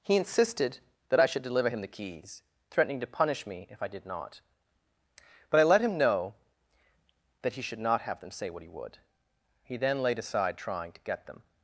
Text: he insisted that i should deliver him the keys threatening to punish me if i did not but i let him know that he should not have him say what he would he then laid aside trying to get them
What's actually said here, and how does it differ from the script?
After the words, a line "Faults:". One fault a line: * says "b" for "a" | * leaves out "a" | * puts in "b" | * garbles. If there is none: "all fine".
he insisted that i should deliver him the keys threatening to punish me if i did not but i let him know that he should not have them say what he would he then laid aside trying to get them
Faults:
* says "them" for "him"